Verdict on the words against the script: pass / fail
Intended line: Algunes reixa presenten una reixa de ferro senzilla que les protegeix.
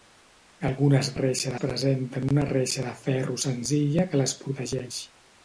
pass